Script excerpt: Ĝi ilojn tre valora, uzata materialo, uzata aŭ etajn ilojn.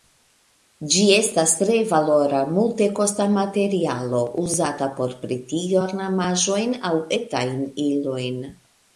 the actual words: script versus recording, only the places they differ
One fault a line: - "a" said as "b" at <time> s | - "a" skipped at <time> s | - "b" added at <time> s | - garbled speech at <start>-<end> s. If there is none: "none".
- "ilojn" said as "estas" at 1.2 s
- "uzata" said as "multekosta" at 2.6 s
- "por pretigi ornamaĵojn" added at 5.0 s